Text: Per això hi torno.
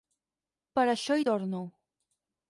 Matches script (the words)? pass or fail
pass